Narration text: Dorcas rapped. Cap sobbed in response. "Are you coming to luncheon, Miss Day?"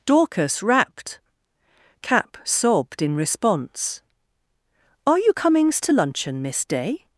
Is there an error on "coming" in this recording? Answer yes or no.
yes